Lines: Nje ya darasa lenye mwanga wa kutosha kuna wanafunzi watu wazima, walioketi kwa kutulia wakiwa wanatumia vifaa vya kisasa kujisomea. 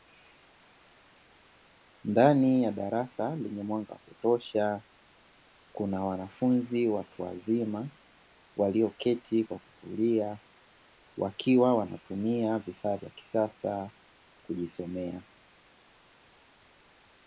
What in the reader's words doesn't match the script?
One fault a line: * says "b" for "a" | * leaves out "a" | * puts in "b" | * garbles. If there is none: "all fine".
* says "Ndani" for "Nje"